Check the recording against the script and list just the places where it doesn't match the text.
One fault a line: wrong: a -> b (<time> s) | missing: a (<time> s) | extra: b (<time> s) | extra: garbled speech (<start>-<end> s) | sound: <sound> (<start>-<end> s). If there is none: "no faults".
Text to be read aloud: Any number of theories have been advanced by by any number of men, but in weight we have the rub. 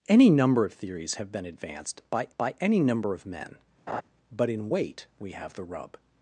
sound: laugh (3.9-4.0 s)